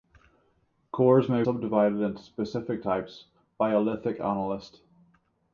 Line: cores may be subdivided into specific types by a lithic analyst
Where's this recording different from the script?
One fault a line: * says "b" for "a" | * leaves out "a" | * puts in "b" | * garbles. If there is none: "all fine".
* leaves out "be"